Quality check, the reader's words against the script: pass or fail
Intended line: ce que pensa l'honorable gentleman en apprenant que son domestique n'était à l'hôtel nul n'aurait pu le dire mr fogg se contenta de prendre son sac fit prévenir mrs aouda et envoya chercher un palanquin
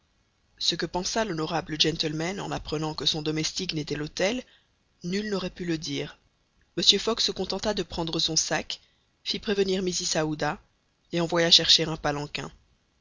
pass